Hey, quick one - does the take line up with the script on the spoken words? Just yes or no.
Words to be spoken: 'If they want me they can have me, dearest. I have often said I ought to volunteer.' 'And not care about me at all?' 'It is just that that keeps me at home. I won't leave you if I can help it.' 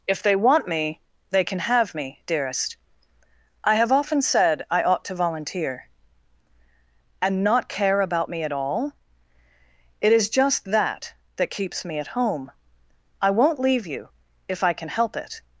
yes